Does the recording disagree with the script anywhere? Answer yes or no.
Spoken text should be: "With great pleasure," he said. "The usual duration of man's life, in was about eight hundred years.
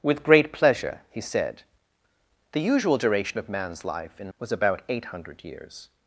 no